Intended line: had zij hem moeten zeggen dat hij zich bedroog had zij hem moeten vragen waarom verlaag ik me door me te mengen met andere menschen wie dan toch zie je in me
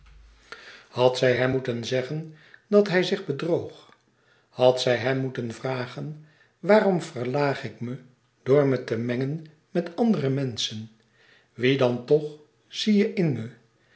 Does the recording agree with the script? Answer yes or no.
yes